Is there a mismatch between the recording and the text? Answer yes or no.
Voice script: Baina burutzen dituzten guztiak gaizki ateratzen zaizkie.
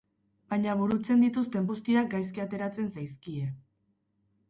no